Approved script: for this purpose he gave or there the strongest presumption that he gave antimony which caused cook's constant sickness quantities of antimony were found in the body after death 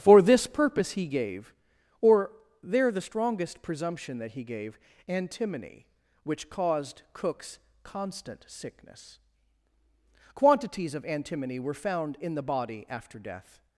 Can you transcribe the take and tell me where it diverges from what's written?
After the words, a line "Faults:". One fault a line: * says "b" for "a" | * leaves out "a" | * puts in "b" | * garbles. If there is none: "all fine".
for this purpose he gave or there the strongest presumption that he gave antimony which caused cook's constant sickness quantities of antimony were found in the body after death
Faults:
all fine